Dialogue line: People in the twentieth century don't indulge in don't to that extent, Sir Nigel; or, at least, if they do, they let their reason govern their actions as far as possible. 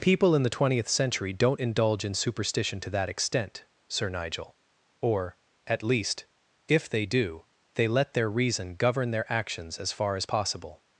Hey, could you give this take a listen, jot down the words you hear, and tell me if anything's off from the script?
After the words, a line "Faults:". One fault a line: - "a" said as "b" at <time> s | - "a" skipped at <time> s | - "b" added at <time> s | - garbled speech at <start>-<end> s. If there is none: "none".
People in the twentieth century don't indulge in superstition to that extent, Sir Nigel; or, at least, if they do, they let their reason govern their actions as far as possible.
Faults:
- "don't" said as "superstition" at 2.1 s